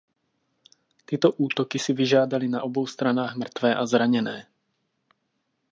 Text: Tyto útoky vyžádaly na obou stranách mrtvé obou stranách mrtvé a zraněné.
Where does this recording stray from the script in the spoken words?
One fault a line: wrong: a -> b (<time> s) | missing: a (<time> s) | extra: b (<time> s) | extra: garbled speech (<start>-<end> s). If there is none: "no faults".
extra: si (1.8 s)
missing: obou stranách mrtvé (3.7 s)